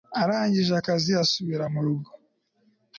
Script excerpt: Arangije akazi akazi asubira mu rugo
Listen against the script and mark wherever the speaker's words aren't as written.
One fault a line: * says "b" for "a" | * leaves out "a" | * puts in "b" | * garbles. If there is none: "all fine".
* leaves out "akazi"